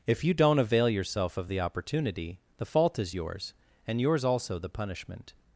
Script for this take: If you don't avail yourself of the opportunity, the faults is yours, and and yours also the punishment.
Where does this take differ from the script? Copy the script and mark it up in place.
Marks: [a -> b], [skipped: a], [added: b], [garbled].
If you don't avail yourself of the opportunity, the [faults -> fault] is yours, and [skipped: and] yours also the punishment.